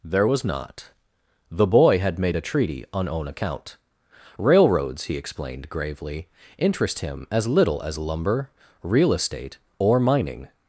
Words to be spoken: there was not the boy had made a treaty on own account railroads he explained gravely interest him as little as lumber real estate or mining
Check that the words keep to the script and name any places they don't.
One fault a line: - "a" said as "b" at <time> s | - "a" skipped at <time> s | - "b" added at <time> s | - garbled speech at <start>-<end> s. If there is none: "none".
none